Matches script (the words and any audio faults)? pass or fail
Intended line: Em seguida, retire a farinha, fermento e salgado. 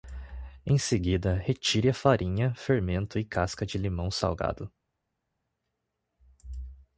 fail